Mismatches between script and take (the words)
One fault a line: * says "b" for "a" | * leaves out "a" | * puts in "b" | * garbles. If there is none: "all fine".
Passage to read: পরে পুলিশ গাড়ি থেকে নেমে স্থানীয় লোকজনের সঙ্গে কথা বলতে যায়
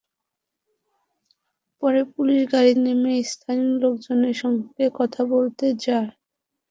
* leaves out "থেকে"